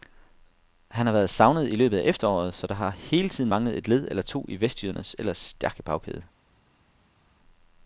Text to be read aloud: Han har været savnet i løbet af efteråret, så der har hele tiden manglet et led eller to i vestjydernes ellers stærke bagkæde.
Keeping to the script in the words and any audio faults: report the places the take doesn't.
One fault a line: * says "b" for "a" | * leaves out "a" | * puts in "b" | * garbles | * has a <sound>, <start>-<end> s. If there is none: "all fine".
all fine